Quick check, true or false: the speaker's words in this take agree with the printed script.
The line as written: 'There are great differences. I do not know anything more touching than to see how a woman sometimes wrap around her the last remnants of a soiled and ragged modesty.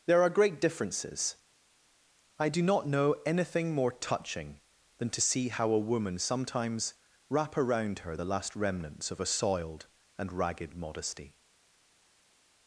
true